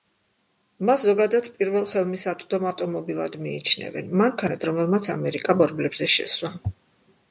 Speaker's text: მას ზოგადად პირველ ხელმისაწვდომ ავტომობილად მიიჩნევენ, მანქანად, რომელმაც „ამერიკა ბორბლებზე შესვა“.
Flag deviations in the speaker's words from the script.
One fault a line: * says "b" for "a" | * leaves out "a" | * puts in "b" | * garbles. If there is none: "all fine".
all fine